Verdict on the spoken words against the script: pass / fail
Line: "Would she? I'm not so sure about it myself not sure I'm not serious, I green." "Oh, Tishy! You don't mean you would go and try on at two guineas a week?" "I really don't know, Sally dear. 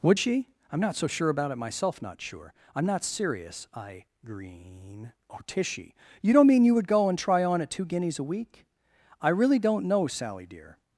pass